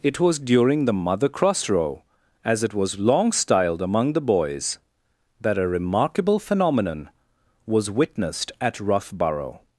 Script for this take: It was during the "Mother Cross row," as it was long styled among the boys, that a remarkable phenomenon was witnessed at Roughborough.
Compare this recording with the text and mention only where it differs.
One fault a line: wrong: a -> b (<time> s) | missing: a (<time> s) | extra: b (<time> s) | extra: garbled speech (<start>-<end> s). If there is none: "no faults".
no faults